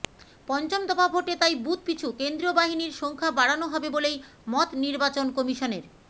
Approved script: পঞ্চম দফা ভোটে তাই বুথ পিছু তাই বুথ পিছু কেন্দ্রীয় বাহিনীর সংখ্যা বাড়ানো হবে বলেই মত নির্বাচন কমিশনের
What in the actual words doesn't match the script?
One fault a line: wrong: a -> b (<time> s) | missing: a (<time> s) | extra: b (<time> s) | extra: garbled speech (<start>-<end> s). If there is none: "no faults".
missing: তাই বুথ পিছু (2.1 s)